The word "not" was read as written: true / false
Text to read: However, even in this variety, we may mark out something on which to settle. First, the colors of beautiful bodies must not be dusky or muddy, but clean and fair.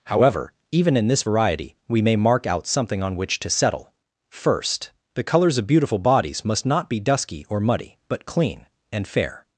true